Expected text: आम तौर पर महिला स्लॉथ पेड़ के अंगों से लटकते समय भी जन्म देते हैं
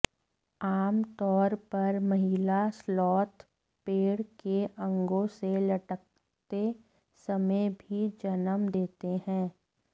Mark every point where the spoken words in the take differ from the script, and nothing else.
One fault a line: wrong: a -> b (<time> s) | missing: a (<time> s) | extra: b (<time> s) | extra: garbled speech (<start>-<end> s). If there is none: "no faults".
no faults